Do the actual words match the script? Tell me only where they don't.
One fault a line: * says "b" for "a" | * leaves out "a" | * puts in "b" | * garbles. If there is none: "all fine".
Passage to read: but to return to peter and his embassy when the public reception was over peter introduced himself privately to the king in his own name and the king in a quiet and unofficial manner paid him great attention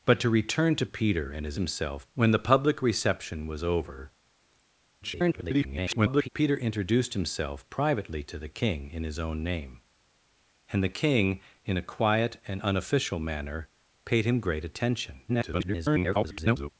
* says "himself" for "embassy"
* garbles
* garbles